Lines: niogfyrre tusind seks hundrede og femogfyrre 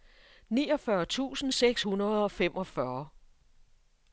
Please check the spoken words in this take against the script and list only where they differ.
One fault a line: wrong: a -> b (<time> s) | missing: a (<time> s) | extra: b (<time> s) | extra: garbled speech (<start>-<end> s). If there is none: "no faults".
no faults